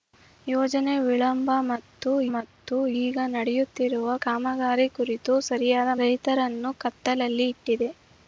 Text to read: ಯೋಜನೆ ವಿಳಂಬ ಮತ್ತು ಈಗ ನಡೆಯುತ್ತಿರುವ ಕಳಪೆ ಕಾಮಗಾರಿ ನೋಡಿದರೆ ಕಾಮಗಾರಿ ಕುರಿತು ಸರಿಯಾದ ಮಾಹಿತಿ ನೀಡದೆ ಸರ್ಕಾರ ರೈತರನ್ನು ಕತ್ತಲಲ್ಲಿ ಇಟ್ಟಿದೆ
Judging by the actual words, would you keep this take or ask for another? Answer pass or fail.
fail